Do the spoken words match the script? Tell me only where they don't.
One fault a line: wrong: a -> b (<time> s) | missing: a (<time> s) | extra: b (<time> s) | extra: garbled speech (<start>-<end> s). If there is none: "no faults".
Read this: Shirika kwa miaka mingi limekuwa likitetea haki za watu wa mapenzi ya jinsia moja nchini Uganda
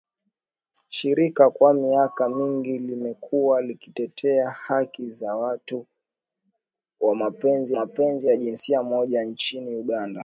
extra: mapenzi (7.7 s)